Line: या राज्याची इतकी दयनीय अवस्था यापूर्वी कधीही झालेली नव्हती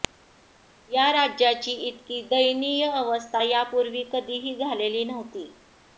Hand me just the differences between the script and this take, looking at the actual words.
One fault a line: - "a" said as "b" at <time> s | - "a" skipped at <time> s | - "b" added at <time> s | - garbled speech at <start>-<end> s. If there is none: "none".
none